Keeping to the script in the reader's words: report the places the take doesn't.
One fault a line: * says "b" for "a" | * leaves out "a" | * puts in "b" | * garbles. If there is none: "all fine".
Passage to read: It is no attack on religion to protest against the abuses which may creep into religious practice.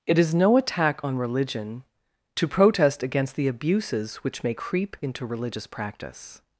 all fine